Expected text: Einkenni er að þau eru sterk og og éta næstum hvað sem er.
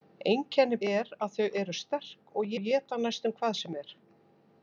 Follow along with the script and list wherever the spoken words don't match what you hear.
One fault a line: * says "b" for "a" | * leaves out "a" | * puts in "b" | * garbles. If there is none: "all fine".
all fine